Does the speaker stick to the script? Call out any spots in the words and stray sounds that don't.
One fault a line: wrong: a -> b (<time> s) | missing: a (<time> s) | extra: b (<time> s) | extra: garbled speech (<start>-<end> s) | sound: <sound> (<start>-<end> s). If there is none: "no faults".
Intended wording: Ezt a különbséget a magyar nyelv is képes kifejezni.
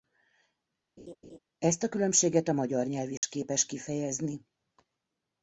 sound: laugh (1.0-1.4 s)
sound: dropout (3.2-3.2 s)